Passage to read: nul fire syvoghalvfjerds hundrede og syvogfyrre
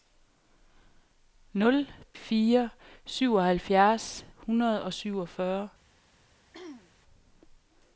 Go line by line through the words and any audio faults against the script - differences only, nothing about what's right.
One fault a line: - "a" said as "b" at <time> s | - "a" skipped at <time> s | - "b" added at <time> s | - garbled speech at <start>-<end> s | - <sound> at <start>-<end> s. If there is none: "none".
- throat clearing at 6.5-6.9 s